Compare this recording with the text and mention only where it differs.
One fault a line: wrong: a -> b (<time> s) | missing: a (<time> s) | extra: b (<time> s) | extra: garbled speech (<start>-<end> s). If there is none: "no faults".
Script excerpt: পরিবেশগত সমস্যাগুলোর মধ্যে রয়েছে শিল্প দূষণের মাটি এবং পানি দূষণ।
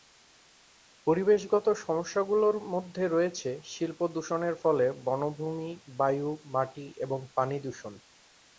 extra: ফলে বনভূমি বায়ু (4.6 s)